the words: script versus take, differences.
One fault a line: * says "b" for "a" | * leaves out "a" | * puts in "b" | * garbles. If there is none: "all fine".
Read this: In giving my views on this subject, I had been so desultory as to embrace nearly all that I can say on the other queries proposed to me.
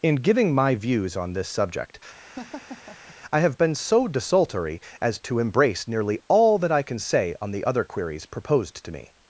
* says "have" for "had"